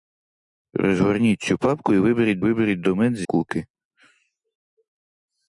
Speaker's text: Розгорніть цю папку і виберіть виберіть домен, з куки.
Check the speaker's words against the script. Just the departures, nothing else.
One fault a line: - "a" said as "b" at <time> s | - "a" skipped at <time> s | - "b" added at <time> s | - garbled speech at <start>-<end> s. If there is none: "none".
none